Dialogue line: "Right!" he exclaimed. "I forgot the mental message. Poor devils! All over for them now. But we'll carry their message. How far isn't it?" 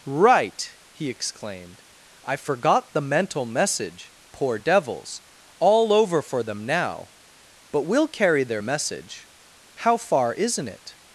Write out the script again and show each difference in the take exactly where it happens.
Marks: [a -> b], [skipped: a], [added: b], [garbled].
"Right!" he exclaimed. "I forgot the mental message. Poor devils! All over for them now. But we'll carry their message. How far isn't it?"